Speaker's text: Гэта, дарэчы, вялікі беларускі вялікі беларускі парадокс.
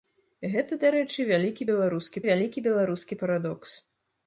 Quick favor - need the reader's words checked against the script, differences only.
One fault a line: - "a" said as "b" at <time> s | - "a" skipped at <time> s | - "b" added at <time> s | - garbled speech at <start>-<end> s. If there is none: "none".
none